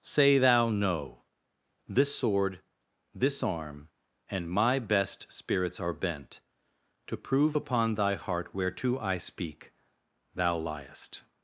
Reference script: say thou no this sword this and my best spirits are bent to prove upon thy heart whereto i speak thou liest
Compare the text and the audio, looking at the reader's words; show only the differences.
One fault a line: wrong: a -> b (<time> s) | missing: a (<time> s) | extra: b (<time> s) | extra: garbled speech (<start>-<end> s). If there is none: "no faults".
extra: arm (3.4 s)